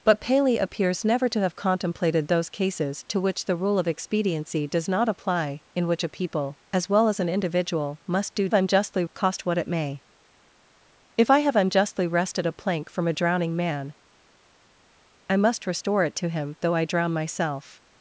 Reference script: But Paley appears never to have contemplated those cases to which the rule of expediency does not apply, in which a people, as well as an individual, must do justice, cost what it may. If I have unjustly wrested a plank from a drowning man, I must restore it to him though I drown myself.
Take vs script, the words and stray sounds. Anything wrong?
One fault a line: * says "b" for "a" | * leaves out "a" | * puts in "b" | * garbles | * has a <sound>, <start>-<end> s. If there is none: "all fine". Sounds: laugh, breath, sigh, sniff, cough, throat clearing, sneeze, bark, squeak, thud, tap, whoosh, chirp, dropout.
* says "unjustly" for "justice"